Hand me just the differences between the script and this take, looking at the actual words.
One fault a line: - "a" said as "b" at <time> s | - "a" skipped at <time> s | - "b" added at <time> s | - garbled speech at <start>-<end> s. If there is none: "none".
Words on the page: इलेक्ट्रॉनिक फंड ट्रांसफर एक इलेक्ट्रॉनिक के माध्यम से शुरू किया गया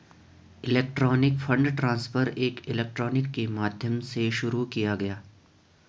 none